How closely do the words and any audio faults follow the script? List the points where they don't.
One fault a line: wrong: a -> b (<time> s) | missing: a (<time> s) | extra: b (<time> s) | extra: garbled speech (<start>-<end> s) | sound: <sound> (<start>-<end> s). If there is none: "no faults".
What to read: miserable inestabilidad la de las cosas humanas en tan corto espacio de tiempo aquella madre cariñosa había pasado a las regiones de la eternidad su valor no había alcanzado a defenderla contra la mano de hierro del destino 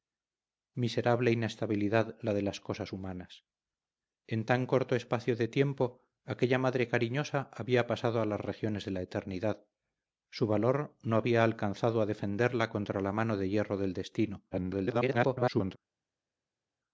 extra: garbled speech (14.5-15.8 s)